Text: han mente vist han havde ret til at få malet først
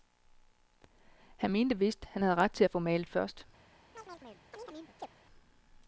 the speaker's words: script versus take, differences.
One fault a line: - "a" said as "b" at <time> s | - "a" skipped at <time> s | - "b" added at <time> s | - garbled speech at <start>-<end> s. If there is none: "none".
none